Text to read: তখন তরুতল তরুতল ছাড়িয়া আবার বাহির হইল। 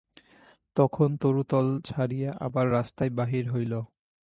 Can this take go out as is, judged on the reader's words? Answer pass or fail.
fail